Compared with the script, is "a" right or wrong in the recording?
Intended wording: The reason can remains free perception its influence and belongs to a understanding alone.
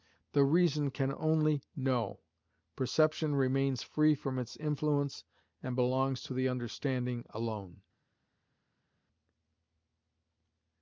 wrong